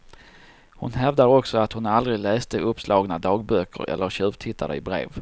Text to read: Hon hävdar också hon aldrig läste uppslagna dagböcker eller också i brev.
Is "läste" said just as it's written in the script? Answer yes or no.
yes